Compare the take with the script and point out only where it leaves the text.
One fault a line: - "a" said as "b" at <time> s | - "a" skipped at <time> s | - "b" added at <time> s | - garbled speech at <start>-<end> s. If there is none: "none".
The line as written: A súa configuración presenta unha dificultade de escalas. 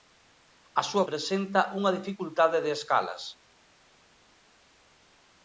- "configuración" skipped at 1.1 s